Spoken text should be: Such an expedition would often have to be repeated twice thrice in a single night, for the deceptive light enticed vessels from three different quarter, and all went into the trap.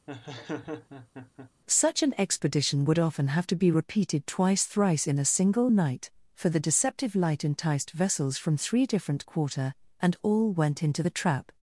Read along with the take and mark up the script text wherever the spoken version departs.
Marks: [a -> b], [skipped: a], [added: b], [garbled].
Such an expedition would often have to be repeated twice thrice in a single night, for the deceptive light enticed vessels from three different quarter, and all went into the trap.